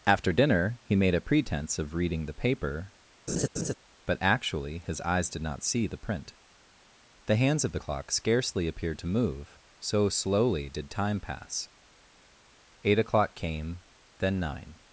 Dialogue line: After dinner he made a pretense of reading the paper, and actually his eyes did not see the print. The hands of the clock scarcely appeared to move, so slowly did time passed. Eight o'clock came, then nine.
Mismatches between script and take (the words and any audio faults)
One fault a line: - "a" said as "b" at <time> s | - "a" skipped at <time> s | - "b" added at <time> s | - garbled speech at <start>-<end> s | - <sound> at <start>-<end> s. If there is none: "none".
- laugh at 3.3-3.7 s
- "and" said as "but" at 4.1 s
- "passed" said as "pass" at 11.2 s